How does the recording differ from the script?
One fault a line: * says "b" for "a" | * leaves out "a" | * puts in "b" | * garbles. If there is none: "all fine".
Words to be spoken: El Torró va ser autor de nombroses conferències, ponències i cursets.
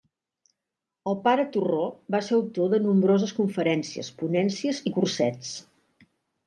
* puts in "pare"